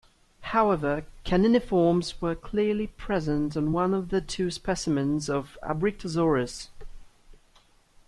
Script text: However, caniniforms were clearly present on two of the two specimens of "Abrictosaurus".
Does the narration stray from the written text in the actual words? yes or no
yes